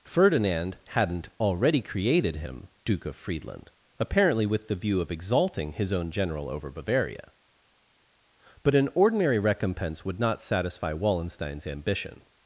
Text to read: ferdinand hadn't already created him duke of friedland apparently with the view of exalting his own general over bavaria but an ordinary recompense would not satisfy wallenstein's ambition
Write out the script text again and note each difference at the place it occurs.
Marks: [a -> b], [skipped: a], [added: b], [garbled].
ferdinand hadn't already created him duke of friedland apparently with the view of exalting his own general over bavaria but an ordinary recompense would not satisfy wallenstein's ambition